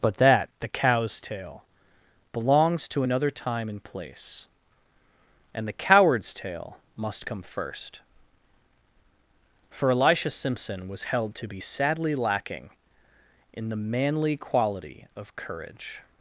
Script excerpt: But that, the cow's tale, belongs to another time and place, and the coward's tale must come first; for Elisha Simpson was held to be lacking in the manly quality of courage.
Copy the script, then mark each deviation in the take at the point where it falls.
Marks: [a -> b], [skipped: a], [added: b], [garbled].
But that, the cow's tale, belongs to another time and place, and the coward's tale must come first; for Elisha Simpson was held to be [added: sadly] lacking in the manly quality of courage.